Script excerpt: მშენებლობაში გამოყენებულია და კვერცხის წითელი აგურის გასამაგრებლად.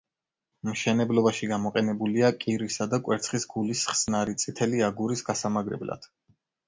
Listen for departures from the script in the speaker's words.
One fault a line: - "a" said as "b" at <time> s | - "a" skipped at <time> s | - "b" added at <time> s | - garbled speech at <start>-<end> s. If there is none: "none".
- "კირისა" added at 2.5 s
- "გულის ხსნარი" added at 3.5 s